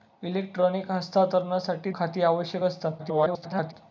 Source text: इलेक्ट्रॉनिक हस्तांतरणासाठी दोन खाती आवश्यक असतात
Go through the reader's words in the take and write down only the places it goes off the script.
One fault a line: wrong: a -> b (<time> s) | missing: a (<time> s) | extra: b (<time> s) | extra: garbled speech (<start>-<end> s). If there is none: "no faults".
missing: दोन (1.9 s)
extra: garbled speech (3.0-3.7 s)